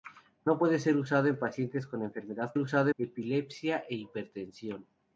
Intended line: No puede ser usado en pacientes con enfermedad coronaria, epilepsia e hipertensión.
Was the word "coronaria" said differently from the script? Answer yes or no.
yes